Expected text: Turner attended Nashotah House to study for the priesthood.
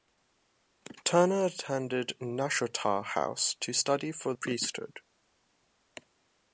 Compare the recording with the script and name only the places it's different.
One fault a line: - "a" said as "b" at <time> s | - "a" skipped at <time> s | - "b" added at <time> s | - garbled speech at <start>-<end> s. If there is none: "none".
- "the" skipped at 4.3 s